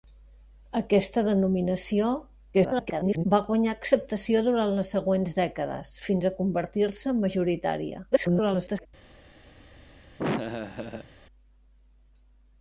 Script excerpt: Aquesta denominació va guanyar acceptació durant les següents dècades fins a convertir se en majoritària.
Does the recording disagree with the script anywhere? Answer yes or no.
yes